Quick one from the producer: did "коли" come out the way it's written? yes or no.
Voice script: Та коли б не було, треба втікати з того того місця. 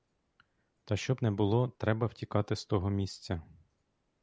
no